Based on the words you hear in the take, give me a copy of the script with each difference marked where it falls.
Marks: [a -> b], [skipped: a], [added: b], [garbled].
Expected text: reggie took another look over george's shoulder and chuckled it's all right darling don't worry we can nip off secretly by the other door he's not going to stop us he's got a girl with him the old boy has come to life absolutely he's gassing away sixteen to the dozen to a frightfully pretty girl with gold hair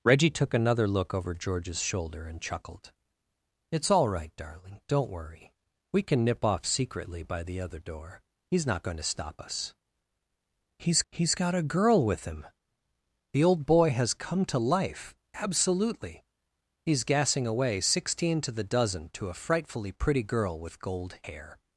reggie took another look over george's shoulder and chuckled it's all right darling don't worry we can nip off secretly by the other door he's not going to stop us he's [added: he's] got a girl with him the old boy has come to life absolutely he's gassing away sixteen to the dozen to a frightfully pretty girl with gold hair